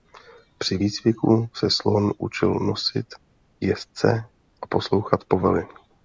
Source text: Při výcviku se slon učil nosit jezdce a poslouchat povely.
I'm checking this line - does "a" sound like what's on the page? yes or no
yes